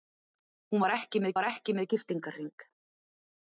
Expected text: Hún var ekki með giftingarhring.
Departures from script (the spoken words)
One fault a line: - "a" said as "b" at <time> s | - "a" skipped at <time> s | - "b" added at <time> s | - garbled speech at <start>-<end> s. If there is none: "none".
- "var ekki með" added at 1.4 s